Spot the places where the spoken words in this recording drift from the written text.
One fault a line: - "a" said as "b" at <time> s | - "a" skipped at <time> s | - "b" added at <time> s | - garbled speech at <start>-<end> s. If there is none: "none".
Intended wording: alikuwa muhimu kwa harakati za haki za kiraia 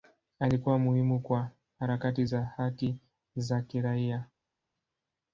none